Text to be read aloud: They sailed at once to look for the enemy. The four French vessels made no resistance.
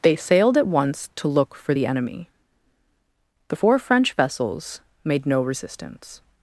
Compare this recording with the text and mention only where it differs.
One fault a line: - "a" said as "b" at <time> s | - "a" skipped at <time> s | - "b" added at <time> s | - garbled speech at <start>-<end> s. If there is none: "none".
none